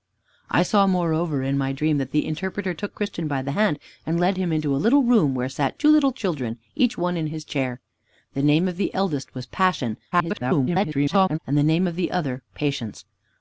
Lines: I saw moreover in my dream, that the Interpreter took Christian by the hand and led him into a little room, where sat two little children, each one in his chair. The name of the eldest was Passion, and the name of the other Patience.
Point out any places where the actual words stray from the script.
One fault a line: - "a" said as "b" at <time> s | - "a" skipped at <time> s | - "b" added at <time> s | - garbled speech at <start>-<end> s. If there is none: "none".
- garbled speech at 10.1-11.4 s